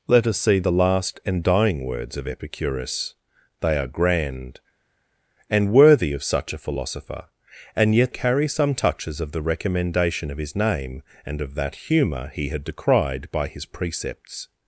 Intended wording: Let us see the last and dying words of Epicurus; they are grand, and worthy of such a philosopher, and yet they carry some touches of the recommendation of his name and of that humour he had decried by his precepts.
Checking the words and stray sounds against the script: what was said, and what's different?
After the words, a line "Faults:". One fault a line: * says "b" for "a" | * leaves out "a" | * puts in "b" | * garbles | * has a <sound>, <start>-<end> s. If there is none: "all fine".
Let us see the last and dying words of Epicurus; they are grand, and worthy of such a philosopher, and yet carry some touches of the recommendation of his name and of that humour he had decried by his precepts.
Faults:
* leaves out "they"